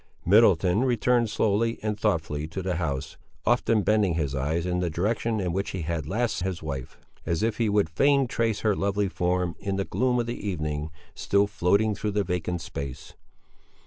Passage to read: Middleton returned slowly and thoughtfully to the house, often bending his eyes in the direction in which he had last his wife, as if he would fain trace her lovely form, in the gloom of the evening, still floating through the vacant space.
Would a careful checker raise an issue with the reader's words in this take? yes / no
no